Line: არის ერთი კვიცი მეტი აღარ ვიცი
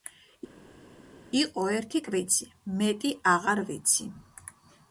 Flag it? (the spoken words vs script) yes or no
yes